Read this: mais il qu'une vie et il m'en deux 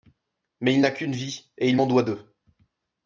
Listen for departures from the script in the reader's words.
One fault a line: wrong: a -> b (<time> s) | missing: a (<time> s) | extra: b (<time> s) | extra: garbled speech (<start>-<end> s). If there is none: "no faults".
extra: n'a (0.8 s)
extra: doit (1.9 s)